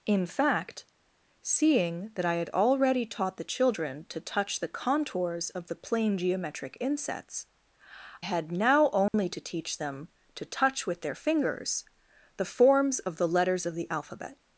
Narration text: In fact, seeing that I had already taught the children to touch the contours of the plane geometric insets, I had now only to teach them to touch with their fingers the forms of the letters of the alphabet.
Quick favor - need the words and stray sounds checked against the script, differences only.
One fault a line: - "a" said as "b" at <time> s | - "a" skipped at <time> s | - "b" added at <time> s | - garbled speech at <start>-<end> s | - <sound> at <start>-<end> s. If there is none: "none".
- "I" skipped at 7.5 s
- dropout at 9.1-9.1 s